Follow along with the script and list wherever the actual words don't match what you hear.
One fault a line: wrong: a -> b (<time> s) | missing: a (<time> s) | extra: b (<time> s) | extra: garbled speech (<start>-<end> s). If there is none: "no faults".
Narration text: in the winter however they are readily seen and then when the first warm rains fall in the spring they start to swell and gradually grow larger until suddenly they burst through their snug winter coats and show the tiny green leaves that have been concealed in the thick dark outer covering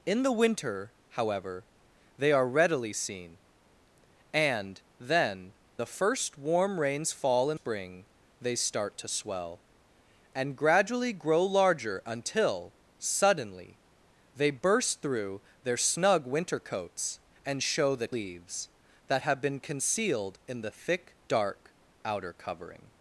missing: when (5.5 s)
missing: the (7.6 s)
missing: tiny green (18.1 s)